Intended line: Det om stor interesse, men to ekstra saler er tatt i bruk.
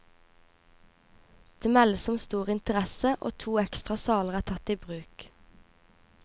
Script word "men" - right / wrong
wrong